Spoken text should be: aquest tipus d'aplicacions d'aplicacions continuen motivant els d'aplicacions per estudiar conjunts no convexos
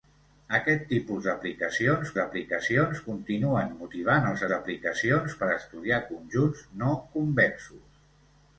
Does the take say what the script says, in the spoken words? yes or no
yes